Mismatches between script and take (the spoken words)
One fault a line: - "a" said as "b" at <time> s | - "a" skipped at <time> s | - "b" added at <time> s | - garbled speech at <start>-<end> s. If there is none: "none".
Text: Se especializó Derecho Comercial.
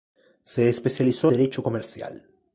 none